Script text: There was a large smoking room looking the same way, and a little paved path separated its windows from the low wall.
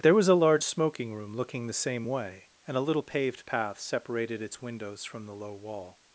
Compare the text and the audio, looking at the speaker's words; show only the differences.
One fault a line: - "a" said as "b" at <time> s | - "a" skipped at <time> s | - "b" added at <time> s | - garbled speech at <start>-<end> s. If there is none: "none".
none